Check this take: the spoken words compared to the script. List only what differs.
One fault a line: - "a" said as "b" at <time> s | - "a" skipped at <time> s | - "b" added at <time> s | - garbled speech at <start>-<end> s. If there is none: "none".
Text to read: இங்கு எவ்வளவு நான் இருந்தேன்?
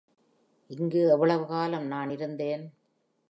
- "காலம்" added at 1.4 s